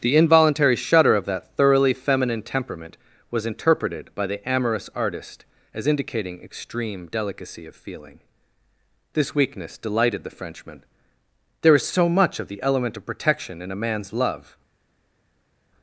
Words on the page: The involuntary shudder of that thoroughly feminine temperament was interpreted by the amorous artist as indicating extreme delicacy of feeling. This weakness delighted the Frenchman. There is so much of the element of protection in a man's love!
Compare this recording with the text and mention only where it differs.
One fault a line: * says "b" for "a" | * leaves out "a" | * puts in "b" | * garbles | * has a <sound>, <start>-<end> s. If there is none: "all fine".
all fine